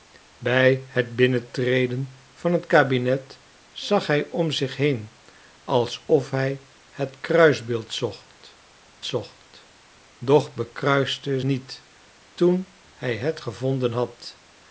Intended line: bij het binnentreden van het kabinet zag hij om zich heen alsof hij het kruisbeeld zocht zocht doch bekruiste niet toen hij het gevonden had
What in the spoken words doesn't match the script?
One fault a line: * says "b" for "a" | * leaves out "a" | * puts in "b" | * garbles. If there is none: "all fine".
all fine